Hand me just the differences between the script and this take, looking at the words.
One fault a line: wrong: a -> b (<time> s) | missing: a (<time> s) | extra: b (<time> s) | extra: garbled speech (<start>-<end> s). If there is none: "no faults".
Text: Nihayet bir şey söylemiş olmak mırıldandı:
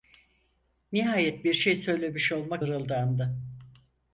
no faults